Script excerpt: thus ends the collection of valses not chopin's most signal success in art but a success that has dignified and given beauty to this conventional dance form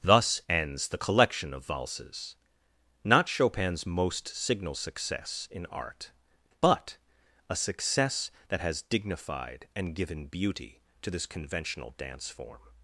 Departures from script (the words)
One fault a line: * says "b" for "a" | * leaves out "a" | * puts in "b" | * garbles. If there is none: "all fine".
all fine